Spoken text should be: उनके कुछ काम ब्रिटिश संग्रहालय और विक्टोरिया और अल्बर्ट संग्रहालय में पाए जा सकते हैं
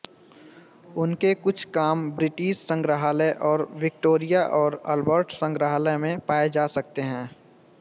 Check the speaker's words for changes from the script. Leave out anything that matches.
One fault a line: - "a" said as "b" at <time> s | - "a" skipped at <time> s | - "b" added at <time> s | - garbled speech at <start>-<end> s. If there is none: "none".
none